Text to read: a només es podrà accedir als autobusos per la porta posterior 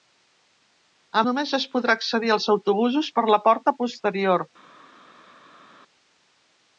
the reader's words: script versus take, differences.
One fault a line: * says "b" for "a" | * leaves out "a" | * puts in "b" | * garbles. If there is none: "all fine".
all fine